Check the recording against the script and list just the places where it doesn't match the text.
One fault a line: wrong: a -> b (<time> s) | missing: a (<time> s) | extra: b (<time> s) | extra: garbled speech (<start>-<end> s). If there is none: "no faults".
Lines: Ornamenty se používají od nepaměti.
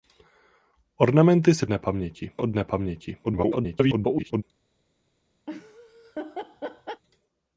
wrong: používají -> nepaměti (1.7 s)
extra: garbled speech (3.2-4.4 s)